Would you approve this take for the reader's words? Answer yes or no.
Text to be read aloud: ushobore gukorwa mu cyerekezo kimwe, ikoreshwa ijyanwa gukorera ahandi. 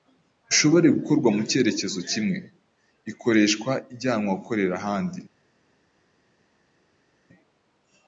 yes